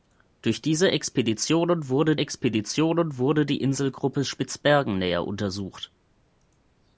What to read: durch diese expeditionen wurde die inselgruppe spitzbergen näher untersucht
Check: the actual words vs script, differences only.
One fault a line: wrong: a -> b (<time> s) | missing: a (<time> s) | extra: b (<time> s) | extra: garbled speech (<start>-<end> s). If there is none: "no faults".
extra: expeditionen wurde (2.2 s)